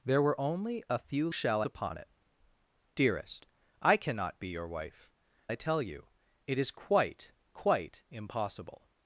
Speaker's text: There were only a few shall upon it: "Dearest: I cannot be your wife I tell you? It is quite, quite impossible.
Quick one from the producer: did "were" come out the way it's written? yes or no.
yes